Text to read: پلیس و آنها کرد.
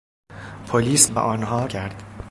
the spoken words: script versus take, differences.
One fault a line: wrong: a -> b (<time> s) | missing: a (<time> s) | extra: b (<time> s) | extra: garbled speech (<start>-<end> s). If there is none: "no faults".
no faults